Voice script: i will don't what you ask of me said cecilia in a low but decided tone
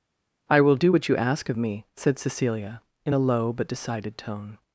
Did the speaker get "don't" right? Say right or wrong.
wrong